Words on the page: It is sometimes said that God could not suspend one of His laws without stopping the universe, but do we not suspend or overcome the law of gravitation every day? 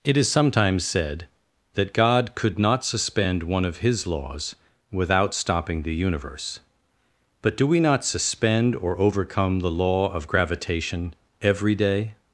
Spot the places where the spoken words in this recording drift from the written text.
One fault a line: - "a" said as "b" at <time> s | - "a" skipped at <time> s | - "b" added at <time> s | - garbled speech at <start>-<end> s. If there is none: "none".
none